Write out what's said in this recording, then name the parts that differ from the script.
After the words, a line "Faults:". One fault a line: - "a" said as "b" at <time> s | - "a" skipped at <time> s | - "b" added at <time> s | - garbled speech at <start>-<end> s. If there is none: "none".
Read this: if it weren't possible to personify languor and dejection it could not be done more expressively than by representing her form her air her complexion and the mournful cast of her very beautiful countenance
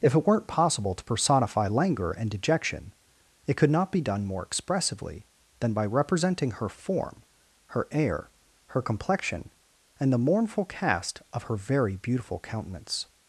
if it weren't possible to personify languor and dejection it could not be done more expressively than by representing her form her air her complexion and the mournful cast of her very beautiful countenance
Faults:
none